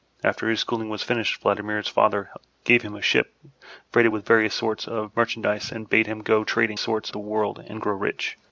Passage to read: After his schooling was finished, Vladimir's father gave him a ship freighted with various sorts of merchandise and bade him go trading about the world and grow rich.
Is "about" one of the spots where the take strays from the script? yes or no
yes